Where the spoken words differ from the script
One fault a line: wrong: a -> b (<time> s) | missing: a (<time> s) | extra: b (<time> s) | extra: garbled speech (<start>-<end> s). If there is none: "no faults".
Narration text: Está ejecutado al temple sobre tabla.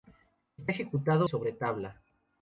missing: al temple (1.3 s)